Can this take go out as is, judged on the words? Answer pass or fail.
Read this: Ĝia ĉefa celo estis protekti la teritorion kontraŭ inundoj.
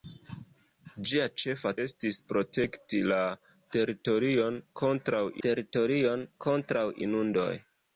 fail